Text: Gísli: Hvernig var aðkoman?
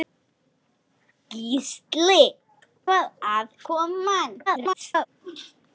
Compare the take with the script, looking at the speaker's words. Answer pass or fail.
fail